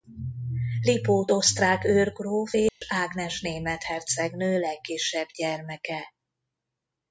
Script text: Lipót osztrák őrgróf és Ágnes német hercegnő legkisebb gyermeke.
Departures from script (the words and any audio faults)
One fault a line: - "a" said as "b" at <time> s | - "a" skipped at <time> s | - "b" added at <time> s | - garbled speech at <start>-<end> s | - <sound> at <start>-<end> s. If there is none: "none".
- dropout at 2.7-2.8 s